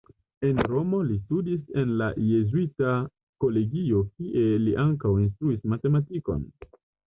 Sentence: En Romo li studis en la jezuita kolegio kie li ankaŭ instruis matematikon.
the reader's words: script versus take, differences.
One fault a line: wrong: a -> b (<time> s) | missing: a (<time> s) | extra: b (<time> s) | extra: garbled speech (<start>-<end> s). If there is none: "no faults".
no faults